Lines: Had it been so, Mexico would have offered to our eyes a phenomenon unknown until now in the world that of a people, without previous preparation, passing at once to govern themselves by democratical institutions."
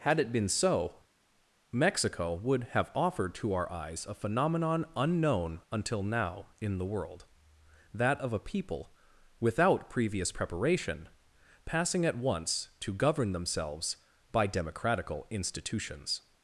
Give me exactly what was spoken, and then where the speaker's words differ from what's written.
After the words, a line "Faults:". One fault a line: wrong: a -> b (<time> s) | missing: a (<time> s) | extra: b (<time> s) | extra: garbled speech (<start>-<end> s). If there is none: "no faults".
Had it been so, Mexico would have offered to our eyes a phenomenon unknown until now in the world that of a people, without previous preparation, passing at once to govern themselves by democratical institutions."
Faults:
no faults